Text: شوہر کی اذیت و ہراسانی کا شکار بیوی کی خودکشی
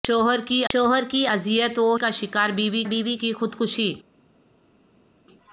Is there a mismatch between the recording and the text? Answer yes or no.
yes